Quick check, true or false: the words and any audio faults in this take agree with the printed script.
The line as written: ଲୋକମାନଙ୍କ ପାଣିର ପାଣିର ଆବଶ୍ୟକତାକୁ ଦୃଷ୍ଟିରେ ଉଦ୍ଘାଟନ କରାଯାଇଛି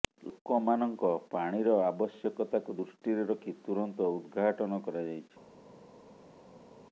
false